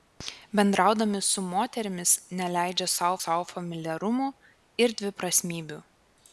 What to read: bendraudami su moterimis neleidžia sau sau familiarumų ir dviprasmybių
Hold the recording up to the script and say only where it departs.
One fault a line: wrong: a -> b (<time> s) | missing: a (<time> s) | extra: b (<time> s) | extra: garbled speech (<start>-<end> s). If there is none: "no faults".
no faults